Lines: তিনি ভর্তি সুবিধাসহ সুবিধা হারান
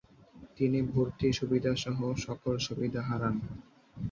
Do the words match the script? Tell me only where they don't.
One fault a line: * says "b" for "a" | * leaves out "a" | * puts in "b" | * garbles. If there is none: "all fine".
* puts in "সকল"